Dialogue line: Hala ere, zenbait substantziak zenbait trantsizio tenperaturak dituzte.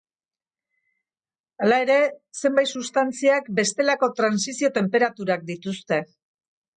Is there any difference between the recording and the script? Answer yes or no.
yes